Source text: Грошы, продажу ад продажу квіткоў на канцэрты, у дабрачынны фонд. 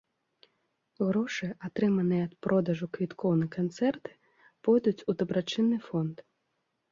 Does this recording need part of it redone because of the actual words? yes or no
yes